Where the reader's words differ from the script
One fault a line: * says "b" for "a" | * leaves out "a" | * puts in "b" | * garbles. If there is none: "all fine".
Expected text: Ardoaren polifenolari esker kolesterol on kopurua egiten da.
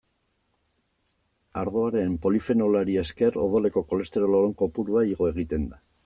* puts in "odoleko"
* puts in "igo"